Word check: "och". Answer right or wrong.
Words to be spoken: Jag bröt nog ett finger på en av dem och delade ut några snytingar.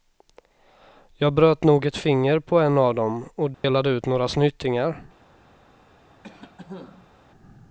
right